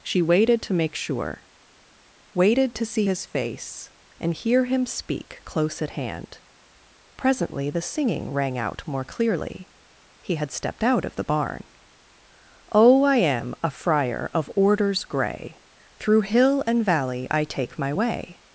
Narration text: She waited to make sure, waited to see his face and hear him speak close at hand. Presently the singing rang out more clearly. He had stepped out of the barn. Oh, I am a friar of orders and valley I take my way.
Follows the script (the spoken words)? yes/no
no